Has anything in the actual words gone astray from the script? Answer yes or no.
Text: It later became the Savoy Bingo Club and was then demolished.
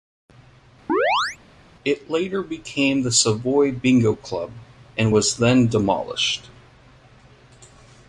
no